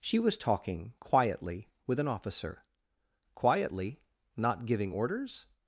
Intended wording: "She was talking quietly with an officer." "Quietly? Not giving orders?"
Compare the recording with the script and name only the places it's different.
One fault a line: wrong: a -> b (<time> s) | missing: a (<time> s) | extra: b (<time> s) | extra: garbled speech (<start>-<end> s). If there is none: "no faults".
no faults